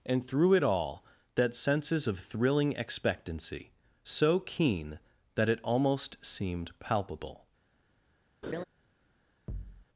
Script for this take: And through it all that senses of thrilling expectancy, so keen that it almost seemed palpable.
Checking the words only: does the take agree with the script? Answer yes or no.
yes